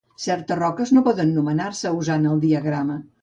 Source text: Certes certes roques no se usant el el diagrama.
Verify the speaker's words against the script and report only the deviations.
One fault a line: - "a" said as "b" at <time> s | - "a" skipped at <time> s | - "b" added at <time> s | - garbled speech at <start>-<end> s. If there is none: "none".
- "certes" skipped at 0.6 s
- "poden nomenar" added at 1.1 s
- "el" skipped at 2.4 s